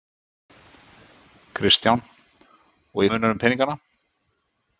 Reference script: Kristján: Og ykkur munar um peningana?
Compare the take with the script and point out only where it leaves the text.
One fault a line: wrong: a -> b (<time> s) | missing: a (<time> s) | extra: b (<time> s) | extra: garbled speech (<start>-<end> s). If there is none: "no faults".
missing: ykkur (3.0 s)